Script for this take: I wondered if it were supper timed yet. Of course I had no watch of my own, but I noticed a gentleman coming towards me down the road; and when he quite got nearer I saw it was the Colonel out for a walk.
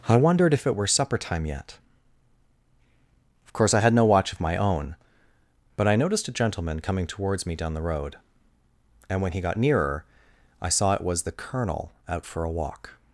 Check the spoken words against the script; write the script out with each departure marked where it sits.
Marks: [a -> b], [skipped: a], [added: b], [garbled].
I wondered if it were supper [timed -> time] yet. Of course I had no watch of my own, but I noticed a gentleman coming towards me down the road; and when he [skipped: quite] got nearer I saw it was the Colonel out for a walk.